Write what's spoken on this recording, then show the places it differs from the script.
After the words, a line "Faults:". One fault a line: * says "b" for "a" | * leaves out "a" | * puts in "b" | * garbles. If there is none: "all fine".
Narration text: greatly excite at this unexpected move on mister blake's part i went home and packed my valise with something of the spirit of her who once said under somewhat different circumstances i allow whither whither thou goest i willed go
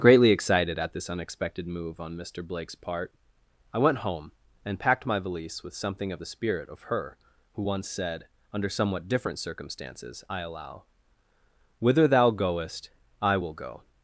greatly excited at this unexpected move on mister blake's part i went home and packed my valise with something of the spirit of her who once said under somewhat different circumstances i allow whither thou goest i will go
Faults:
* says "excited" for "excite"
* leaves out "whither"
* says "will" for "willed"